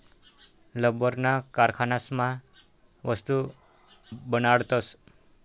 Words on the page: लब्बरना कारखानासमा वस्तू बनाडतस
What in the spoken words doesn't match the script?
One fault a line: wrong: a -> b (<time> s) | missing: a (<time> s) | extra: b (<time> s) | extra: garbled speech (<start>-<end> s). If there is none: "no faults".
no faults